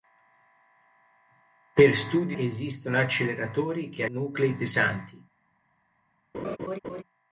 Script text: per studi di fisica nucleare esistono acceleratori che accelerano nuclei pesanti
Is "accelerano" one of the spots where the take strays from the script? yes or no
yes